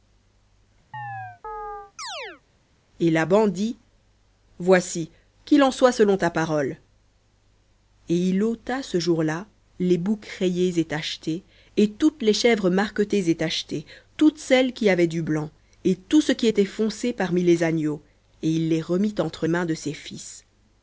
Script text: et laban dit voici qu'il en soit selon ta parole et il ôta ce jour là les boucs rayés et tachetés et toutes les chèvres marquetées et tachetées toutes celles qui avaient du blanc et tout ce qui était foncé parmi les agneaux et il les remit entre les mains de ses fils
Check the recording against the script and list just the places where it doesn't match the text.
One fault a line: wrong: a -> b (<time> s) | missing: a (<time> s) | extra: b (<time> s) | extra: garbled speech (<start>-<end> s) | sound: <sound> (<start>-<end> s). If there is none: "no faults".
sound: chirp (0.9-2.4 s)
missing: les (19.5 s)